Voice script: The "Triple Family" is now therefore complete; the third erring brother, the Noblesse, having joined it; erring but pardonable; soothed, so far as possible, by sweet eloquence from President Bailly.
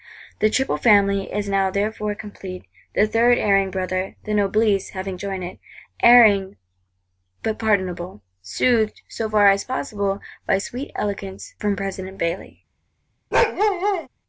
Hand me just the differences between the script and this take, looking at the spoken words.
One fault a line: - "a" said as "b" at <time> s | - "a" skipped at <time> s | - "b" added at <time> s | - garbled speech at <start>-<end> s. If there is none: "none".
none